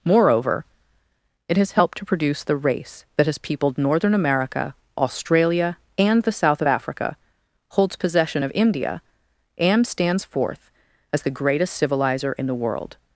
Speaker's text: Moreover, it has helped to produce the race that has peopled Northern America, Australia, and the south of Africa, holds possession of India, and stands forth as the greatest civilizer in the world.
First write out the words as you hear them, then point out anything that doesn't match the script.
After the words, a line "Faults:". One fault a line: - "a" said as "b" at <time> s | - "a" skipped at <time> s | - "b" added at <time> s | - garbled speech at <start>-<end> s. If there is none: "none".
Moreover, it has helped to produce the race that has peopled Northern America, Australia, and the south of Africa, holds possession of India, and stands forth as the greatest civilizer in the world.
Faults:
none